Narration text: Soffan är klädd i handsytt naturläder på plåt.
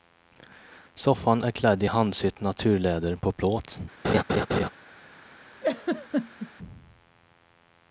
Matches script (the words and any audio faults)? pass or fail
fail